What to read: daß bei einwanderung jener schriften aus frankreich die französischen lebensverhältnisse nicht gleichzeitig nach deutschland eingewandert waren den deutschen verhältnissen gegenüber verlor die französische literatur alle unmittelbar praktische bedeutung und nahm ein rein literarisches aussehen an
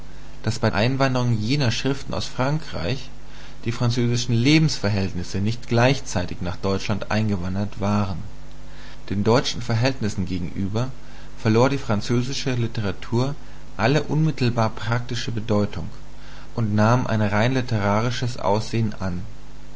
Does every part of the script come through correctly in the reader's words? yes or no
yes